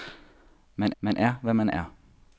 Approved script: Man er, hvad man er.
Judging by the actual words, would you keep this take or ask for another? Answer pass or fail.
fail